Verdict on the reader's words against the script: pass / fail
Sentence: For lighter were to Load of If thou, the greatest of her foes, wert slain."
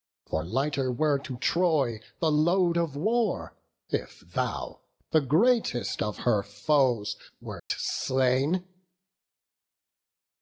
fail